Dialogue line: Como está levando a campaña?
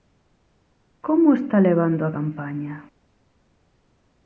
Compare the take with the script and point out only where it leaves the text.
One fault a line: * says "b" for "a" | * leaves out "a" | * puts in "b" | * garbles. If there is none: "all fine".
all fine